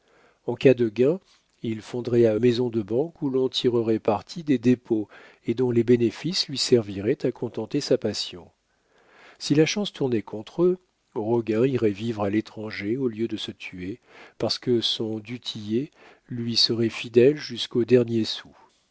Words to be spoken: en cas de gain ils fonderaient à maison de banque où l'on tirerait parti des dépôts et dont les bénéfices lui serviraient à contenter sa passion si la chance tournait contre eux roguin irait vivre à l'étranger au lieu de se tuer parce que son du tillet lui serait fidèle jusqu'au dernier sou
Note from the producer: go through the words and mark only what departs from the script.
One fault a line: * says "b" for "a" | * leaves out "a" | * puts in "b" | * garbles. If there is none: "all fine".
all fine